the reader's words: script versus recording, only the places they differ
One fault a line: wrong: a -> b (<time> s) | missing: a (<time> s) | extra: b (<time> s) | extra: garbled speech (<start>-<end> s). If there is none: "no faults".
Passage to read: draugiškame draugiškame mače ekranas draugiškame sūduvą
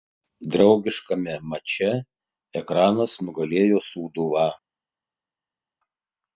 missing: draugiškame (1.4 s)
wrong: draugiškame -> nugalėjo (3.3 s)